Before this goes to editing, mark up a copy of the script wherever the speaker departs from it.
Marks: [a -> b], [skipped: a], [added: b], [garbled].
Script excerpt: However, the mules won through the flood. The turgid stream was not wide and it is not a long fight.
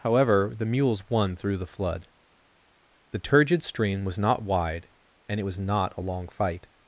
However, the mules won through the flood. The turgid stream was not wide and it [is -> was] not a long fight.